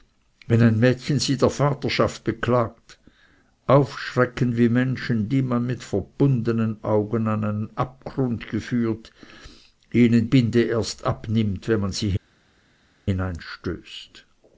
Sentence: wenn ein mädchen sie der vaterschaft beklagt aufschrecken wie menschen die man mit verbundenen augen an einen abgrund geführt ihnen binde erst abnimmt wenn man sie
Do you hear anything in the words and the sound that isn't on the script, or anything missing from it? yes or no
no